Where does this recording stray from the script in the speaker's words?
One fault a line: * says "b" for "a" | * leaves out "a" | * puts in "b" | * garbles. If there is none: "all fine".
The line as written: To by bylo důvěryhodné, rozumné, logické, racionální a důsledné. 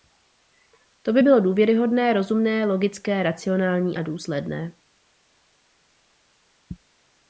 all fine